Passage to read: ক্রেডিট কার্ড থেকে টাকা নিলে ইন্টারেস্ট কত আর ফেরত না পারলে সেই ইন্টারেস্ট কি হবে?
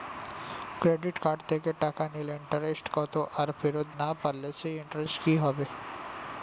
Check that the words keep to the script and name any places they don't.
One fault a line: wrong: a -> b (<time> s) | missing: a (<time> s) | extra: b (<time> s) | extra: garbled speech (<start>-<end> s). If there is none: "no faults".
no faults